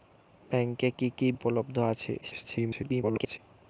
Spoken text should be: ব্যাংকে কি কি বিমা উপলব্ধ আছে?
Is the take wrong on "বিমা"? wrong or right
wrong